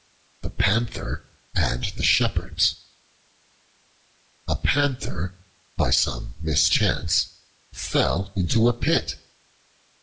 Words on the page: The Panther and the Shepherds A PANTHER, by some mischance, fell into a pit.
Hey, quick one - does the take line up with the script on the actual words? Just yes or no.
yes